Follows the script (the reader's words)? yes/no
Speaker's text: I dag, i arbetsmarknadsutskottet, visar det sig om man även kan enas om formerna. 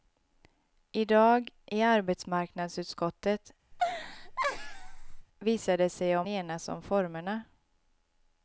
no